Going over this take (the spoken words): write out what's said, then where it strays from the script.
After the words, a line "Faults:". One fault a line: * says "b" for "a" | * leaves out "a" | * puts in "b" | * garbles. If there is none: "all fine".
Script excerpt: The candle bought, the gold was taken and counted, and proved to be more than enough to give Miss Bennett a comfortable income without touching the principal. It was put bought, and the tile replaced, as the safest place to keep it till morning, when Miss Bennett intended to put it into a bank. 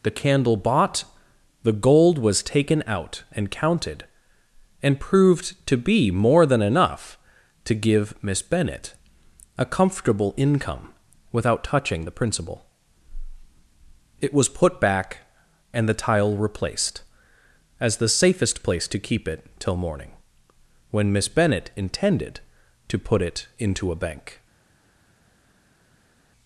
The candle bought, the gold was taken out and counted, and proved to be more than enough to give Miss Bennett a comfortable income without touching the principal. It was put back, and the tile replaced, as the safest place to keep it till morning, when Miss Bennett intended to put it into a bank.
Faults:
* puts in "out"
* says "back" for "bought"